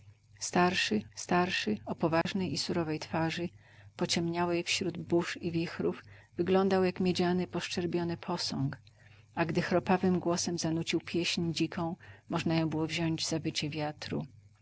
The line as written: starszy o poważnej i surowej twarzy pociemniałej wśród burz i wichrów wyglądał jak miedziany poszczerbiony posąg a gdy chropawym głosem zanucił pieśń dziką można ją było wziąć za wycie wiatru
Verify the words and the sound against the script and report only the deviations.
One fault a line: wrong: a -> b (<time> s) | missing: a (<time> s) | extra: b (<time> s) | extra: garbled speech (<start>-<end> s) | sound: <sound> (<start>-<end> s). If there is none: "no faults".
extra: starszy (1.1 s)
sound: dropout (2.2-2.3 s)